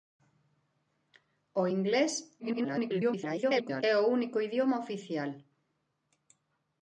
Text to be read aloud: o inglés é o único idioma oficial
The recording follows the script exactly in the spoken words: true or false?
false